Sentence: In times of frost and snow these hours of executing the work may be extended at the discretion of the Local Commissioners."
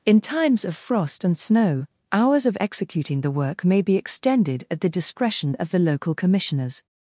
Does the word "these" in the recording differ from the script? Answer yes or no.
yes